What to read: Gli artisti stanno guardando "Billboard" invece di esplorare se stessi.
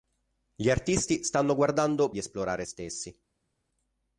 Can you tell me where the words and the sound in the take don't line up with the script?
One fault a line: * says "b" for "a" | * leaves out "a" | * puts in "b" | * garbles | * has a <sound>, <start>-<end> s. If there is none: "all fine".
* leaves out "Billboard invece"
* leaves out "se"